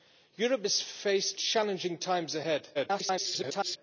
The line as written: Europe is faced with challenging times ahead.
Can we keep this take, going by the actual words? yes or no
no